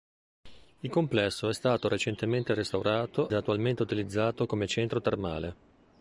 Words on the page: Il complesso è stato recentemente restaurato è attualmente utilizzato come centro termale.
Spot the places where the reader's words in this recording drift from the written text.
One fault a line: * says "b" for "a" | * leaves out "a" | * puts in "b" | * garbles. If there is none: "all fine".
all fine